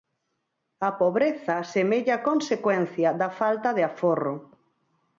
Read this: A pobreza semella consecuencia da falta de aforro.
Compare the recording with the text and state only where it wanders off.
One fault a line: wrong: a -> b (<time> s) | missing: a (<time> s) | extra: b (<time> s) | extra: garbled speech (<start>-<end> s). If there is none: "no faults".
no faults